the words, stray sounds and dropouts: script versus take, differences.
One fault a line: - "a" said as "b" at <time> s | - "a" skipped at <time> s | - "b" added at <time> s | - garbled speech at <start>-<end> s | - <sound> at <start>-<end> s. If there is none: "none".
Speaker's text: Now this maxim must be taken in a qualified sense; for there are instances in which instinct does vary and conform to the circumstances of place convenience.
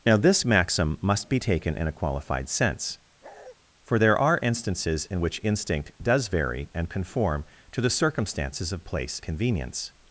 - bark at 3.2-3.6 s